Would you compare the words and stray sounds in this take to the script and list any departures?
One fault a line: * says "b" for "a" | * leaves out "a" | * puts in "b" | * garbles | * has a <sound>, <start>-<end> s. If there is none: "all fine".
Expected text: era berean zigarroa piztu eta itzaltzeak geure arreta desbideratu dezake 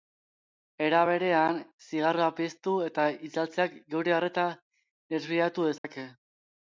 * has a dropout, 5.8-5.8 s